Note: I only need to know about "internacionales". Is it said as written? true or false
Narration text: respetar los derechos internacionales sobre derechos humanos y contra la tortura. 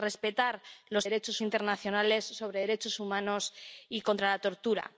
true